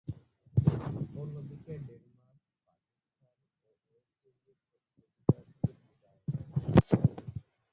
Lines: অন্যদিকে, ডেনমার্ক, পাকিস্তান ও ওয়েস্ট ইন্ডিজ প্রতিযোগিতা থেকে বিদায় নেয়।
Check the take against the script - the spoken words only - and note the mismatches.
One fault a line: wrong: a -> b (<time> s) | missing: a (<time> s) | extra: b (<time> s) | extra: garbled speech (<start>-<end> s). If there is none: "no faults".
no faults